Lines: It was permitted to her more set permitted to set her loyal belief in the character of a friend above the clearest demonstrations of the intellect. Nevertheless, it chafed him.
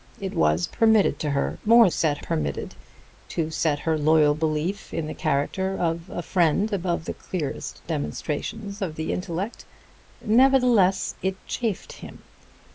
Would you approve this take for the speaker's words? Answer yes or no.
yes